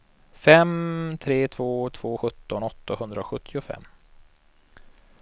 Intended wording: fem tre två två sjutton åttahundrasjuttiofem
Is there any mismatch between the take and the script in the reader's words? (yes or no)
no